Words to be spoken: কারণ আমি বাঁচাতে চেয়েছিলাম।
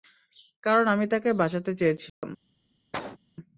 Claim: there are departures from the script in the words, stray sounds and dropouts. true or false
true